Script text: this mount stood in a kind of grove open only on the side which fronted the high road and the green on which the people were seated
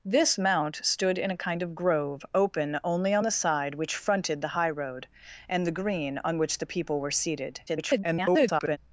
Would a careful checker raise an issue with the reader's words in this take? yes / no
yes